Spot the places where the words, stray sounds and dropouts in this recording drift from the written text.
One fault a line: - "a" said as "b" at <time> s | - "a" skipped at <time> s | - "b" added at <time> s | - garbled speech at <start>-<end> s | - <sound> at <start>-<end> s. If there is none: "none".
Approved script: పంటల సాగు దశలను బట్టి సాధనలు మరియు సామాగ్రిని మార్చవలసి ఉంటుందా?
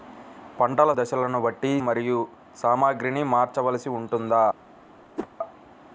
- "సాగు" skipped at 0.9 s
- "సాధనలు" skipped at 1.7 s
- whoosh at 5.2-5.3 s